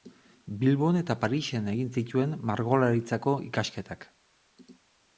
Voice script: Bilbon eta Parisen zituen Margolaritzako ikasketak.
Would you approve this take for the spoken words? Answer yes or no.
no